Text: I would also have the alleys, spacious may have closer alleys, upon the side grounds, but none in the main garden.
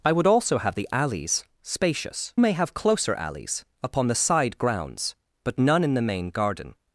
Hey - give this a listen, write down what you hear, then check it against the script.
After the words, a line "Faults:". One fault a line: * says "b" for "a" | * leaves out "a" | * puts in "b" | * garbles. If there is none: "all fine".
I would also have the alleys, spacious may have closer alleys, upon the side grounds, but none in the main garden.
Faults:
all fine